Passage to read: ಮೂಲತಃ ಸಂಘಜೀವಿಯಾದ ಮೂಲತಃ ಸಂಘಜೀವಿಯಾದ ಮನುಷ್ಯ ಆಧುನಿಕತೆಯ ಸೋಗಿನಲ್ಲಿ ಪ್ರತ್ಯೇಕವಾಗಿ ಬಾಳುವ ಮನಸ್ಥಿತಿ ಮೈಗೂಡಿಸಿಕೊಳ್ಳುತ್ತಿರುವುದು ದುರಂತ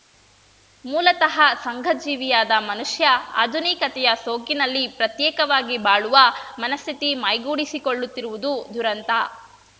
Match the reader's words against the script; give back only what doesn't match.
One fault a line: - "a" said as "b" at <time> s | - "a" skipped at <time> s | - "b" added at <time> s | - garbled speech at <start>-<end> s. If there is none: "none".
- "ಮೂಲತಃ ಸಂಘಜೀವಿಯಾದ" skipped at 2.5 s